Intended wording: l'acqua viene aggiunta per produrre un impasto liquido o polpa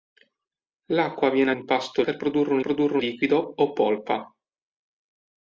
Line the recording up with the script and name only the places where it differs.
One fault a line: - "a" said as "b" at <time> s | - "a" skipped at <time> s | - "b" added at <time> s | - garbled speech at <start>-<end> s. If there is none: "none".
- "aggiunta" said as "impasto" at 1.5 s
- "impasto" said as "produrre" at 2.6 s